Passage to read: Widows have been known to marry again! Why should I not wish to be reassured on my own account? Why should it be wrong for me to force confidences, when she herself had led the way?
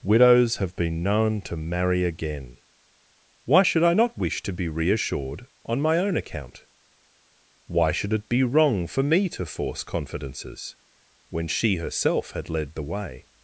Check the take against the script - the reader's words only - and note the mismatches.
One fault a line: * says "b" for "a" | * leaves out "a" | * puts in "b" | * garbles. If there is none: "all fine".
all fine